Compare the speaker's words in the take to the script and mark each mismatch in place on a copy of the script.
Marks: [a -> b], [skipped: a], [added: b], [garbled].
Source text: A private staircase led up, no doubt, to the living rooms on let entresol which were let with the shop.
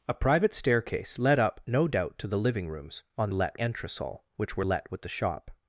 A private staircase led up, no doubt, to the living rooms on let entresol which were let with the shop.